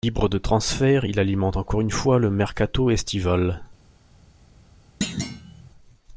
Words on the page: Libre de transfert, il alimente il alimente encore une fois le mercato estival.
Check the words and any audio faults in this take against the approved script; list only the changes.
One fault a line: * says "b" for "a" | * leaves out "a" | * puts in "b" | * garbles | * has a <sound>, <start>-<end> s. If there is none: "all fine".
* leaves out "il alimente"
* has a thud, 5.0-5.7 s